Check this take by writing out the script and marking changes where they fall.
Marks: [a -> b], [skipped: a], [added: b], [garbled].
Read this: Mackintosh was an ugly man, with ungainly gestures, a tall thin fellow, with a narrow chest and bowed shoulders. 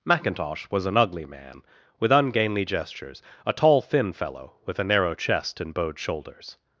Mackintosh was an ugly man, with ungainly gestures, a tall thin fellow, with a narrow chest and bowed shoulders.